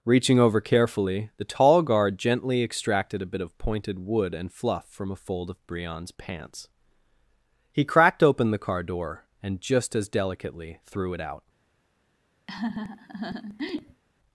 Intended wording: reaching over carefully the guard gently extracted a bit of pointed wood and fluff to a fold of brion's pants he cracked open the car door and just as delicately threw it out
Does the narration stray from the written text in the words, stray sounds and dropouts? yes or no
yes